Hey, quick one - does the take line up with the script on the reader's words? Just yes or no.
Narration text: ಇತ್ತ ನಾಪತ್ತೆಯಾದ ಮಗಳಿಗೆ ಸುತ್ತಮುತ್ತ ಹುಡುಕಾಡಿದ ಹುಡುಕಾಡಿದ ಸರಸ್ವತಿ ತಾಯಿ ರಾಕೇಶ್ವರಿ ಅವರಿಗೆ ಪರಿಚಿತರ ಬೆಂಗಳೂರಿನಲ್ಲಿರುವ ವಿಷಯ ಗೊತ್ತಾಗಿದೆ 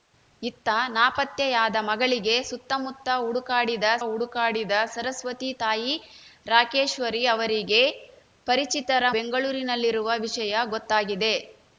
yes